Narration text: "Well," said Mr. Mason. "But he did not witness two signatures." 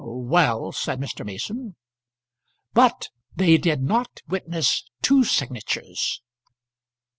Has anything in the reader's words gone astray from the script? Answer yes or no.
yes